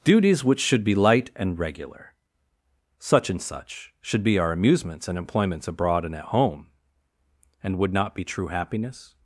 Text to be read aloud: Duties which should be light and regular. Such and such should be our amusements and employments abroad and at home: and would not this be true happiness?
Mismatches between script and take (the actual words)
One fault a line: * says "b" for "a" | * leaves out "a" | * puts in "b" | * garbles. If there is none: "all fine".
* leaves out "this"